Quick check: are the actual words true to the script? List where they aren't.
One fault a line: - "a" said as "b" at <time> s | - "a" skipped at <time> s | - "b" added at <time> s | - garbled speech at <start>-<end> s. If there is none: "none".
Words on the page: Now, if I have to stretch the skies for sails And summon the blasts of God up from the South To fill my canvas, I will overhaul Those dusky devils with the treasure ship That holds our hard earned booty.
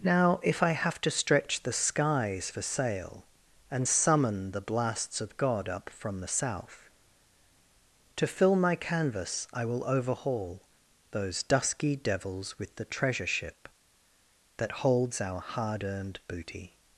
- "sails" said as "sail" at 2.6 s